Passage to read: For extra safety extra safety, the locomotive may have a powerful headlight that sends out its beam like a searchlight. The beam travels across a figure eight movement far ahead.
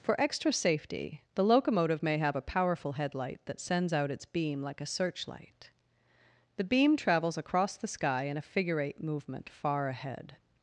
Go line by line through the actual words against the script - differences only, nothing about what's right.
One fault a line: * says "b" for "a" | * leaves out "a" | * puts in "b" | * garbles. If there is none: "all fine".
* leaves out "extra safety"
* puts in "the sky in"